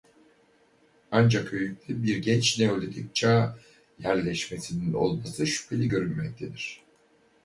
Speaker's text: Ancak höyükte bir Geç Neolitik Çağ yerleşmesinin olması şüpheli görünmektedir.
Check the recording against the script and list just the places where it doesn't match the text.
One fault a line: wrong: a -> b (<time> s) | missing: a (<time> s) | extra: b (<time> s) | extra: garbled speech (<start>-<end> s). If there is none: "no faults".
no faults